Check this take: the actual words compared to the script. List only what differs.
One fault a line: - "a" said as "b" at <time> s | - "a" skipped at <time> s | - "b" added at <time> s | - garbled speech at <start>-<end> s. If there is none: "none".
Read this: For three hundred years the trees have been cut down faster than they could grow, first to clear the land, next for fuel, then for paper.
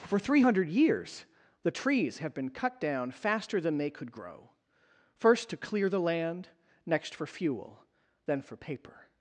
none